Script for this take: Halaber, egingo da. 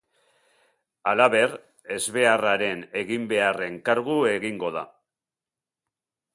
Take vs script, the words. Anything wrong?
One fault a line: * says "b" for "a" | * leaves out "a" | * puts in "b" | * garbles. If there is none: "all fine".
* puts in "ezbeharraren eginbeharren kargu"